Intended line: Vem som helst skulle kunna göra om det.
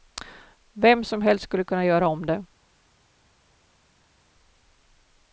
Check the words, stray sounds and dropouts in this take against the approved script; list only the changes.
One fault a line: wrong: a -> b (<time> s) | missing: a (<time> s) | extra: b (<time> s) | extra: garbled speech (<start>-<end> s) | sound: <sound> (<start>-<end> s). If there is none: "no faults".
no faults